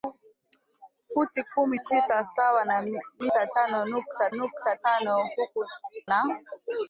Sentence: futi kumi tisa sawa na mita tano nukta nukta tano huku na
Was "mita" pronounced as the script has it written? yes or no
yes